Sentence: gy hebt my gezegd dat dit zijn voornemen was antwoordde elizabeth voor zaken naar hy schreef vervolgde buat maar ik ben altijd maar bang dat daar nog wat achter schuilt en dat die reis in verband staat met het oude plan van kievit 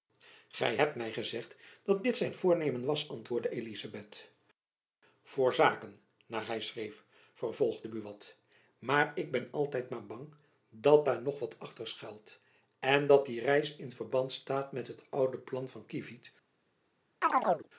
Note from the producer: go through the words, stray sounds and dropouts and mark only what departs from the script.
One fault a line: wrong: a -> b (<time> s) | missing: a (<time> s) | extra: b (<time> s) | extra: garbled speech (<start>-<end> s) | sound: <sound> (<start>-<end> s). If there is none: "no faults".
sound: chirp (17.2-17.7 s)